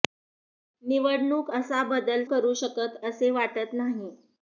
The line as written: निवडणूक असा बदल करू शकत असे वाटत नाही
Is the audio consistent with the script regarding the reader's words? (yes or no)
yes